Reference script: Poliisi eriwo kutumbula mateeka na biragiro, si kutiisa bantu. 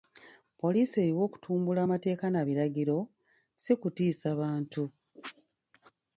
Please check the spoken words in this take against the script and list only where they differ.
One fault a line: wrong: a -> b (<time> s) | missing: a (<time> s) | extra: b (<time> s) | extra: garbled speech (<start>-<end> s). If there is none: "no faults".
no faults